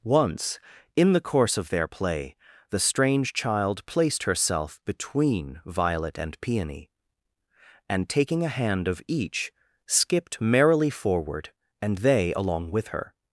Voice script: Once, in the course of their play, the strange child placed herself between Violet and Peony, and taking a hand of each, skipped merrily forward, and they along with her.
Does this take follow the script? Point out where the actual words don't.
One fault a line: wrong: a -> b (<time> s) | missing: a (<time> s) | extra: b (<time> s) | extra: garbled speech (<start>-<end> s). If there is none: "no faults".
no faults